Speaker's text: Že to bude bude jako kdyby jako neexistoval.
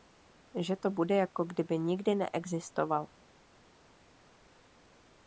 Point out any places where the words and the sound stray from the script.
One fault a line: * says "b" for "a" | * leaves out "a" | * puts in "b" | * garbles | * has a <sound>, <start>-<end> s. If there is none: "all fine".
* leaves out "bude"
* says "nikdy" for "jako"